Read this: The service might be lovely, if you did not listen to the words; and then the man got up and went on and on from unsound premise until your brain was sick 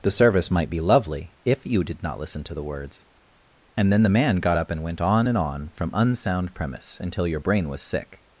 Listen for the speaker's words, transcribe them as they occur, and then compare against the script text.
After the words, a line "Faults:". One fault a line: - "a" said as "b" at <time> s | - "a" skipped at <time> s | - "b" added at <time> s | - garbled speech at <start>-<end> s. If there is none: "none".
The service might be lovely, if you did not listen to the words; and then the man got up and went on and on from unsound premise until your brain was sick
Faults:
none